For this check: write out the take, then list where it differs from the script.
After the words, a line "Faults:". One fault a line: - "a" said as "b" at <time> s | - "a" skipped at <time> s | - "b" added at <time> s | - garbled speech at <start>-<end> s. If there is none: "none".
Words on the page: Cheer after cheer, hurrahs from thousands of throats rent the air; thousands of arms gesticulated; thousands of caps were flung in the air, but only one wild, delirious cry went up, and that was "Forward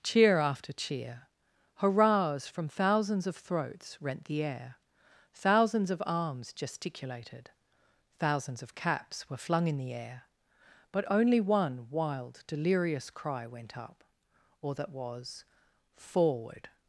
Cheer after cheer, hurrahs from thousands of throats rent the air; thousands of arms gesticulated; thousands of caps were flung in the air, but only one wild, delirious cry went up, or that was "Forward
Faults:
- "and" said as "or" at 14.6 s